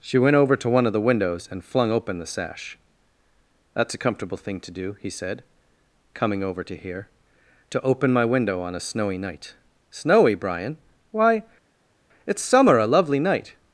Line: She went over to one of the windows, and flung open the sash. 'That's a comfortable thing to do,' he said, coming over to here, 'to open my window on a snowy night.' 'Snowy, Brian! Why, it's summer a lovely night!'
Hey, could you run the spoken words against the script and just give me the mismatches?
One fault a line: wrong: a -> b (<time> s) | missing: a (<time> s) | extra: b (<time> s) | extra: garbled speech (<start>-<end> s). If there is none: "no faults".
no faults